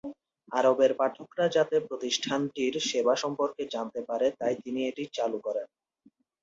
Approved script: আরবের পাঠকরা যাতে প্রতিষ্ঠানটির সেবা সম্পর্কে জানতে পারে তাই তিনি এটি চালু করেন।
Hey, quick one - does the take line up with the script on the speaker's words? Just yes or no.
yes